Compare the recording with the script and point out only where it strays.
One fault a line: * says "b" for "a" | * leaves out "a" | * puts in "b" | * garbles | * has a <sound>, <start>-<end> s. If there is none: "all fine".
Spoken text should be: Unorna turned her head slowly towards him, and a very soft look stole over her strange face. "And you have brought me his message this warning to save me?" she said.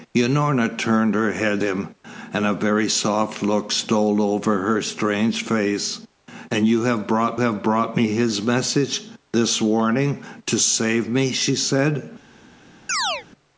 * leaves out "slowly towards"
* puts in "have brought"
* has a chirp, 12.9-13.3 s